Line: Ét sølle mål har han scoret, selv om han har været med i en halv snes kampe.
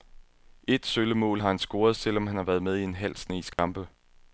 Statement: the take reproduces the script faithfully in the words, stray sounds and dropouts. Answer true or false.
false